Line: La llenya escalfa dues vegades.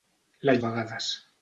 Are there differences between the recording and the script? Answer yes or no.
yes